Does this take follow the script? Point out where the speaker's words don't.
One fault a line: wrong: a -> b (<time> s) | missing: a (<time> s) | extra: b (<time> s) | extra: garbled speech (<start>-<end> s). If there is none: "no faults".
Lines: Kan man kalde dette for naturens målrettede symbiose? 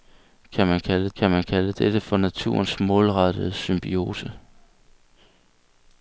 extra: kan man kalde (1.1 s)